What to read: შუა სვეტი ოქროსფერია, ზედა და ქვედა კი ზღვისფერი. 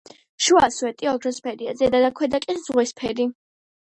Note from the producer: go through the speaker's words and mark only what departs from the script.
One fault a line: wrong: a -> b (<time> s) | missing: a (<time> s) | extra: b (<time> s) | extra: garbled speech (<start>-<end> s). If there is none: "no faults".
no faults